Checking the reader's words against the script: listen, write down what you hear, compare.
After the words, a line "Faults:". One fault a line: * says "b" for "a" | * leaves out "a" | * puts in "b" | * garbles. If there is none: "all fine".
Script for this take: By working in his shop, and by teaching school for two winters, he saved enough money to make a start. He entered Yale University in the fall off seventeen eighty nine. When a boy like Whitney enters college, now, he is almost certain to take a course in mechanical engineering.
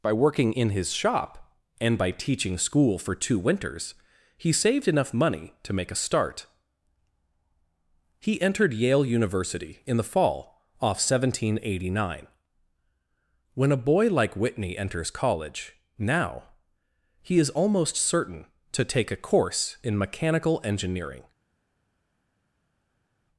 By working in his shop, and by teaching school for two winters, he saved enough money to make a start. He entered Yale University in the fall off seventeen eighty nine. When a boy like Whitney enters college, now, he is almost certain to take a course in mechanical engineering.
Faults:
all fine